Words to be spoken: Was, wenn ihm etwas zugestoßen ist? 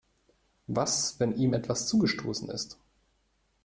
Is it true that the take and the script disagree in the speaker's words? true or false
false